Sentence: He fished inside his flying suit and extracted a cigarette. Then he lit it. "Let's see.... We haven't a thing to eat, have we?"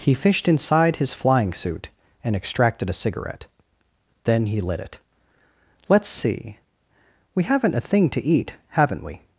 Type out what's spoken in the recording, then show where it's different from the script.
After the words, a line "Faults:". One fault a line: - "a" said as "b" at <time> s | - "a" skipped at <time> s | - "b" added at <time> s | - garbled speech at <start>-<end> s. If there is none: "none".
He fished inside his flying suit and extracted a cigarette. Then he lit it. "Let's see.... We haven't a thing to eat, haven't we?"
Faults:
- "have" said as "haven't" at 8.7 s